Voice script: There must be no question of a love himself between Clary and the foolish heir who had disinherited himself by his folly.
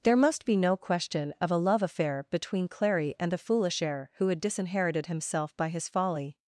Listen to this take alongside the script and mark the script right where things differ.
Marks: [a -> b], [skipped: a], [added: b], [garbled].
There must be no question of a love [himself -> affair] between Clary and the foolish heir who had disinherited himself by his folly.